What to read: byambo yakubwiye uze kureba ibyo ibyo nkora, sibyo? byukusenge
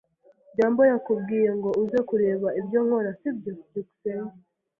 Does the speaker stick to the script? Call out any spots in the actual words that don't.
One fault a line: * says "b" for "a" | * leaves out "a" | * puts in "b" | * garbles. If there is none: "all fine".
* puts in "ngo"
* leaves out "ibyo"